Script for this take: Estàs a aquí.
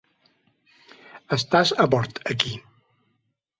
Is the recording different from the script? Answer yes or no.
yes